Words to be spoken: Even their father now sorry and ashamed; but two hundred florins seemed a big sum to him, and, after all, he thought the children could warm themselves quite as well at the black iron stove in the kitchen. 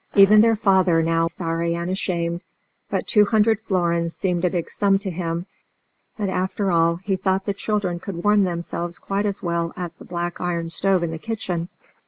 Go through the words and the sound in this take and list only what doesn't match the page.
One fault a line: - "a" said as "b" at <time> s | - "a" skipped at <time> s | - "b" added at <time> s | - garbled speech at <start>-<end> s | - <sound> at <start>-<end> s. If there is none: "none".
none